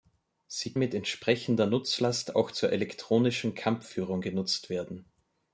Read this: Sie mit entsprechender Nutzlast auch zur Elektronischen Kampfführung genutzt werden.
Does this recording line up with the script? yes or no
yes